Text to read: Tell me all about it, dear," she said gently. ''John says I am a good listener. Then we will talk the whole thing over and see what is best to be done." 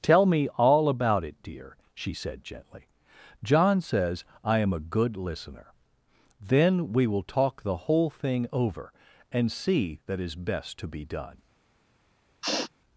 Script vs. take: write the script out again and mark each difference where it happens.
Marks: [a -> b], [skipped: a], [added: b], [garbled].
Tell me all about it, dear," she said gently. ''John says I am a good listener. Then we will talk the whole thing over and see [what -> that] is best to be done."